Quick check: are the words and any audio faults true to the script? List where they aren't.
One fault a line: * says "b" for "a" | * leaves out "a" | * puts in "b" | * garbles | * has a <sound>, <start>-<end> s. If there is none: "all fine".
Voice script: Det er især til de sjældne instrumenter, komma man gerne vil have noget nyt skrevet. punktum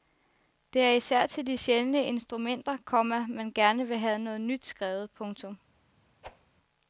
* has a whoosh, 6.2-6.5 s